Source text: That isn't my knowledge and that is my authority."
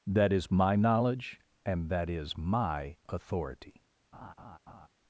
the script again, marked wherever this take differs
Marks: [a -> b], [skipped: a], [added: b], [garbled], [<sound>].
That [isn't -> is] my knowledge and that is my authority." [laugh]